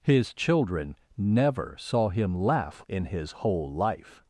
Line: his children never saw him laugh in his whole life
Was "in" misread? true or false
false